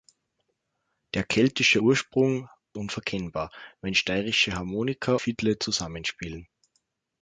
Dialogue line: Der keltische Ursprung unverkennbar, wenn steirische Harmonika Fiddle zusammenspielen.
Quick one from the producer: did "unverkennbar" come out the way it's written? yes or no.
yes